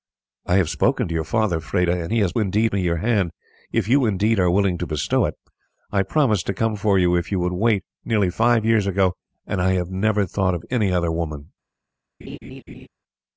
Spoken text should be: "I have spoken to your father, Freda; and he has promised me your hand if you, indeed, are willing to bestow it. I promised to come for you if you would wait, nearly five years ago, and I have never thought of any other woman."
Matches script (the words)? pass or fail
fail